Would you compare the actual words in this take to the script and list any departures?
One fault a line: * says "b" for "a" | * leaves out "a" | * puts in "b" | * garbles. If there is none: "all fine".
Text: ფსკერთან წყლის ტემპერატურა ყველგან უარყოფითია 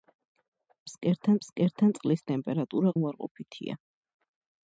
* puts in "ფსკერთან"
* leaves out "ყველგან"